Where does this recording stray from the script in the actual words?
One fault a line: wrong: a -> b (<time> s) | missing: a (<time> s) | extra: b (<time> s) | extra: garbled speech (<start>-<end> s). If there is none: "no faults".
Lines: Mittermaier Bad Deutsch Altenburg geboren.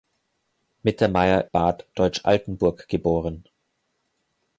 no faults